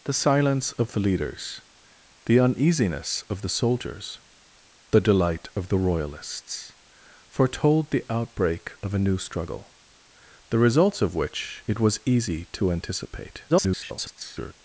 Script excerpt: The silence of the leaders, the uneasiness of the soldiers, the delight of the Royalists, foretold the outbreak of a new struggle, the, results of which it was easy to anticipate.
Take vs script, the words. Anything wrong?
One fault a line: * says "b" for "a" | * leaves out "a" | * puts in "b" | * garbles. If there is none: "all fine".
* garbles